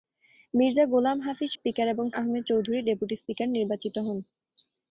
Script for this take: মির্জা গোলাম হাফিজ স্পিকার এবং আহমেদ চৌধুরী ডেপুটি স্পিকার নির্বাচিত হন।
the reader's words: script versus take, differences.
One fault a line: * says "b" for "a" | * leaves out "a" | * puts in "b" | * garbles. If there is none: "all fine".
all fine